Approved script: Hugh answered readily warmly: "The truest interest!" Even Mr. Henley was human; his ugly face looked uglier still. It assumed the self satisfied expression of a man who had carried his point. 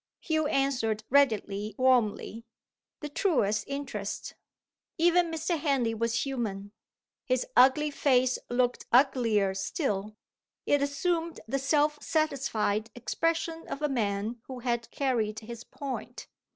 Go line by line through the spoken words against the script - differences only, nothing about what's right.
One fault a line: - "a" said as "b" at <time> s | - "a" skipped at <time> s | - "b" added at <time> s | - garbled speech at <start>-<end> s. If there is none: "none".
none